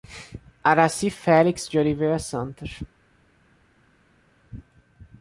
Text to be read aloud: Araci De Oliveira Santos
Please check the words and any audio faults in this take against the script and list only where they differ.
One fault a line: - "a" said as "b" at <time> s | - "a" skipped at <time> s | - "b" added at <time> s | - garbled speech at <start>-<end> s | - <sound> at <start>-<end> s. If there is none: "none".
- "Felix" added at 1.1 s